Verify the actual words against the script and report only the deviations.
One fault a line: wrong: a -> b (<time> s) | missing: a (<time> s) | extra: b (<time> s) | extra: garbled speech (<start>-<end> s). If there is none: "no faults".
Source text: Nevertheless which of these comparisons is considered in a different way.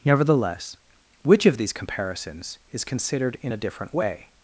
no faults